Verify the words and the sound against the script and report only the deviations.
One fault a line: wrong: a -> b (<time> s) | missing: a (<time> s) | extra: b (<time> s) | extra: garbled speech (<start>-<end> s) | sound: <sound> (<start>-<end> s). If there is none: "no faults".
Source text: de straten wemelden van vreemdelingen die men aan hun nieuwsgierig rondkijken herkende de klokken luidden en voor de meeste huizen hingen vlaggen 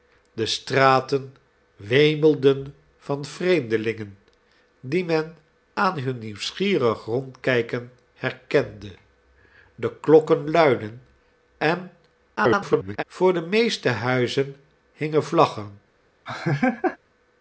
extra: garbled speech (12.4-13.0 s)
sound: laugh (16.3-17.0 s)